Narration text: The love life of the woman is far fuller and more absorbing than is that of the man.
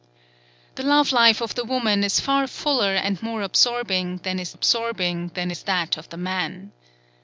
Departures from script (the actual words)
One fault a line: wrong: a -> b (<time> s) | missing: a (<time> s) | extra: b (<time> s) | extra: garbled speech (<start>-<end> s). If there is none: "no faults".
extra: absorbing than is (4.5 s)